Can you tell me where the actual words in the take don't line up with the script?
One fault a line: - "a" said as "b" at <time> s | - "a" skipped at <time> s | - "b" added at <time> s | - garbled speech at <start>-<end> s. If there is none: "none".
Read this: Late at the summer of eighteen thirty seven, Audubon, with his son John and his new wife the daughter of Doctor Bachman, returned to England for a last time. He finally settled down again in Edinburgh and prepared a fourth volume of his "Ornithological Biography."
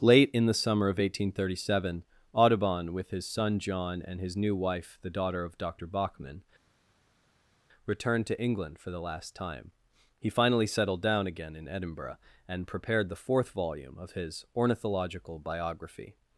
- "at" said as "in" at 0.3 s
- "a" said as "the" at 8.9 s
- "a" said as "the" at 13.1 s